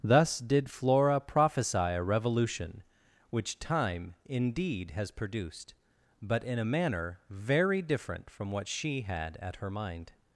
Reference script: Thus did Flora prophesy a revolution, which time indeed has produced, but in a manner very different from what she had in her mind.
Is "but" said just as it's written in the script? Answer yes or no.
yes